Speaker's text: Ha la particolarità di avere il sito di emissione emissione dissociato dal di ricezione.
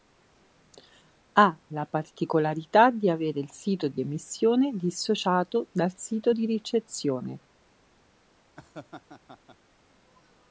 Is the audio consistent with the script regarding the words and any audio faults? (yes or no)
no